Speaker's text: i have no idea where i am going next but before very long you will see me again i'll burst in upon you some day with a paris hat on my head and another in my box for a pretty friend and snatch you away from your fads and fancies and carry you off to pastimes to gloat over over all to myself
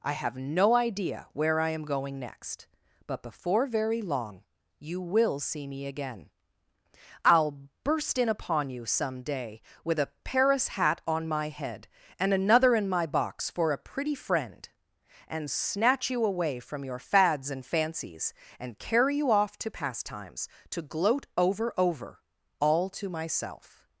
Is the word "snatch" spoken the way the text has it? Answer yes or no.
yes